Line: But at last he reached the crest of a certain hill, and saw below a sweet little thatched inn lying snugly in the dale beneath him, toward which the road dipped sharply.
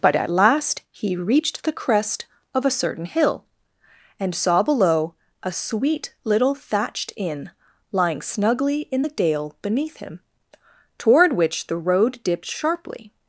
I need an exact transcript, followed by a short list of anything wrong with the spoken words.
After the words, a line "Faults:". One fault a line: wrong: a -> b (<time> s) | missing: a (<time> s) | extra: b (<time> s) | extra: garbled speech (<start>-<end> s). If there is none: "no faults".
But at last he reached the crest of a certain hill, and saw below a sweet little thatched inn lying snugly in the dale beneath him, toward which the road dipped sharply.
Faults:
no faults